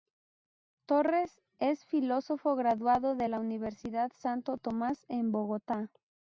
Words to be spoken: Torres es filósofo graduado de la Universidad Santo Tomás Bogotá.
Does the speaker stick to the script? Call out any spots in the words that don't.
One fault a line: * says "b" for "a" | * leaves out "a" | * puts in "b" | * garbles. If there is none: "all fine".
* puts in "en"